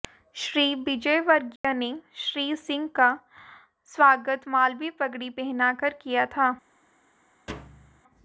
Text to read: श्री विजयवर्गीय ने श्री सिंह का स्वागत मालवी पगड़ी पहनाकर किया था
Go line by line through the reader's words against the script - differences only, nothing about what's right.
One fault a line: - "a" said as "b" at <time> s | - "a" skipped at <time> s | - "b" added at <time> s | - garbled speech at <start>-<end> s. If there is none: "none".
none